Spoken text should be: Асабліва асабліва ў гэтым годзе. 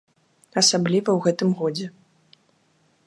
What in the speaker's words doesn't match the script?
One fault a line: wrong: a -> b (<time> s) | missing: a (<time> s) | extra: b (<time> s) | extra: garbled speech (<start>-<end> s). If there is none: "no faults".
missing: асабліва (1.1 s)